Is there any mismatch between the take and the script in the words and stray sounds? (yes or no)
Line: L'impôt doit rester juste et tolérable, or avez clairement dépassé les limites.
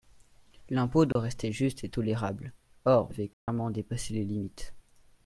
yes